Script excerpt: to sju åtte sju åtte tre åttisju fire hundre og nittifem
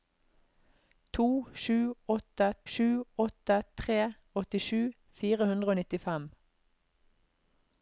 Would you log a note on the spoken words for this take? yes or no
no